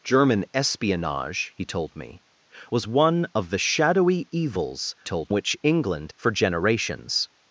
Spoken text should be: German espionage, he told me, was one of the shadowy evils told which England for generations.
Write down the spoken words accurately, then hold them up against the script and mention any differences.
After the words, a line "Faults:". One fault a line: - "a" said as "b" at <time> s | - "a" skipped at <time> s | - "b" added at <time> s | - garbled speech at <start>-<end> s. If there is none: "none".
German espionage, he told me, was one of the shadowy evils told which England for generations.
Faults:
none